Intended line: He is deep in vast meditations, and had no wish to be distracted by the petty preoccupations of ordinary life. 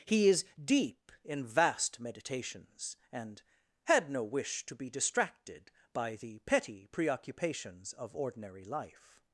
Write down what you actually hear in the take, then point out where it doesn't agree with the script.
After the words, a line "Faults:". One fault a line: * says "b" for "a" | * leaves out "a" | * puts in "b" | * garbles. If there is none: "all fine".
He is deep in vast meditations, and had no wish to be distracted by the petty preoccupations of ordinary life.
Faults:
all fine